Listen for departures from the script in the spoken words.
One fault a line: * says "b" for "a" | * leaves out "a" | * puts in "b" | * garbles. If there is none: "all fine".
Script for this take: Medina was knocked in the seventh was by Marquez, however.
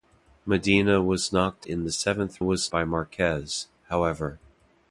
all fine